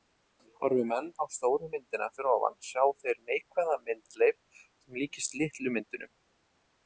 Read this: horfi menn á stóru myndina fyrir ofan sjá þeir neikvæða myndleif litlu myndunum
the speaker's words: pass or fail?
fail